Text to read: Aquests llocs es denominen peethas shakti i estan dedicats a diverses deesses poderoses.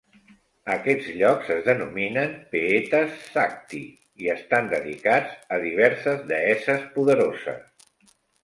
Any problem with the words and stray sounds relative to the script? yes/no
no